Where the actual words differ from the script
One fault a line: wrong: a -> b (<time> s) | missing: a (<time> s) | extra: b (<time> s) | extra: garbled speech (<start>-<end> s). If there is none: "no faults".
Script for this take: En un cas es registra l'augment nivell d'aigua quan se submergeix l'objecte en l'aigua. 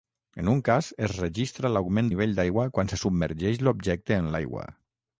no faults